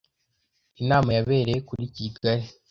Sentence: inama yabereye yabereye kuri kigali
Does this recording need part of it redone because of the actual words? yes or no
yes